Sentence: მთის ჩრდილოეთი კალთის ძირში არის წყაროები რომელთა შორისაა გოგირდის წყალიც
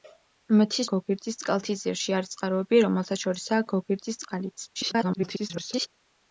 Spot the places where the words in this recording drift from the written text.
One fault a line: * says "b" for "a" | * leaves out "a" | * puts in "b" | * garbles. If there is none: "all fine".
* says "გოგირდის" for "ჩრდილოეთი"
* garbles